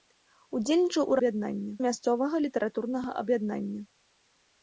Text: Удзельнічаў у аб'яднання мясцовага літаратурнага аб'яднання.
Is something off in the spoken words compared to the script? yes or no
no